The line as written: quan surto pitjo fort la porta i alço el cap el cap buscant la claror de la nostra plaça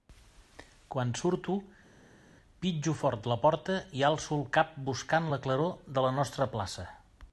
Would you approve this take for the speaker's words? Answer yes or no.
no